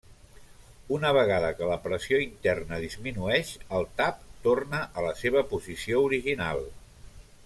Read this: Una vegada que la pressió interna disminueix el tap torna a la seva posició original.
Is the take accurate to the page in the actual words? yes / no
yes